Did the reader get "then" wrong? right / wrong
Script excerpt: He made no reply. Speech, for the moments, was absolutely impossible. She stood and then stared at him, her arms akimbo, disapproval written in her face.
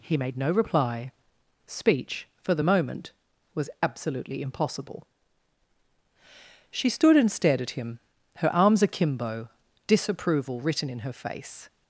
wrong